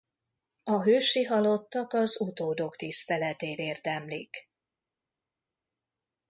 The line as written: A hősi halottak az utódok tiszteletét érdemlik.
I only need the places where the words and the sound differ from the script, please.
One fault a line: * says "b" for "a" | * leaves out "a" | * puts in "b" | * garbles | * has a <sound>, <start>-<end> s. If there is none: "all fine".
all fine